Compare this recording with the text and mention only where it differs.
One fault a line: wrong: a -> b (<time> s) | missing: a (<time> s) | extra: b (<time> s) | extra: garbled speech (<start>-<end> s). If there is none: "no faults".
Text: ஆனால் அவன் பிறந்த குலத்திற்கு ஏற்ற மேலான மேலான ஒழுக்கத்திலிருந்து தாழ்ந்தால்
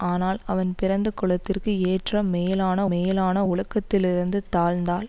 no faults